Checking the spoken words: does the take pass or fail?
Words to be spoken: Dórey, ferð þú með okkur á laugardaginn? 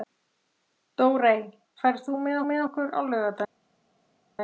fail